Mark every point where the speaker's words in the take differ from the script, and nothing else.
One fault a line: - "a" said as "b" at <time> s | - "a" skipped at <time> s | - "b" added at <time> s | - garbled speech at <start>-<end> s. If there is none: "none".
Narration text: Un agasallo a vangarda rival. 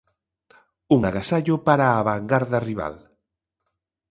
- "para" added at 1.7 s